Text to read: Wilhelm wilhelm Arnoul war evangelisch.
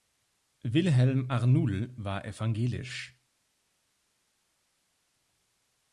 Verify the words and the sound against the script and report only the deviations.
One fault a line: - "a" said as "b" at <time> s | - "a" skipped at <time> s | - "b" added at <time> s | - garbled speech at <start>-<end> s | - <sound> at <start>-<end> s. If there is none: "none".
- "wilhelm" skipped at 1.3 s